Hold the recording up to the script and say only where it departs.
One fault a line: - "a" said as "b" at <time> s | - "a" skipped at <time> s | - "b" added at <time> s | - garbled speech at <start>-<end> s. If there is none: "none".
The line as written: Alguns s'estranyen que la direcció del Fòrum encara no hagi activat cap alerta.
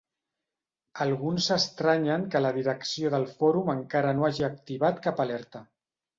none